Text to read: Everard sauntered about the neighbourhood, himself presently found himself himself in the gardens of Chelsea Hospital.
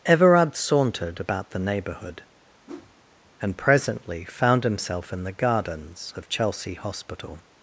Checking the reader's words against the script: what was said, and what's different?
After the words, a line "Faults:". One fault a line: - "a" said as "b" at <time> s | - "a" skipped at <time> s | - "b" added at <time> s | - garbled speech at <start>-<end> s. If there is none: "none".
Everard sauntered about the neighbourhood, and presently found himself in the gardens of Chelsea Hospital.
Faults:
- "himself" said as "and" at 3.4 s
- "himself" skipped at 5.1 s